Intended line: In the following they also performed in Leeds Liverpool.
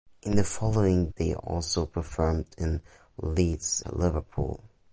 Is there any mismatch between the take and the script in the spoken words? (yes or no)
no